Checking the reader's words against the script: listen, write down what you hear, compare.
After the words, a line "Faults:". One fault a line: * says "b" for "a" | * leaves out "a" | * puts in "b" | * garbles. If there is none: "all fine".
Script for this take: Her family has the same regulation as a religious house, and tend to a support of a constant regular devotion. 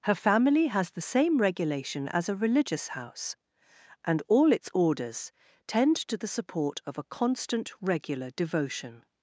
Her family has the same regulation as a religious house, and all its orders tend to the support of a constant regular devotion.
Faults:
* puts in "all its orders"
* says "the" for "a"